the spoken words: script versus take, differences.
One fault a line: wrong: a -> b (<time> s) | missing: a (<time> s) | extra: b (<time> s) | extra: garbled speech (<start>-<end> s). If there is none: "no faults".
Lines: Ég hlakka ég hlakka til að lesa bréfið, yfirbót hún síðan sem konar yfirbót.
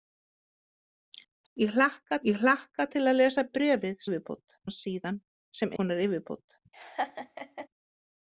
no faults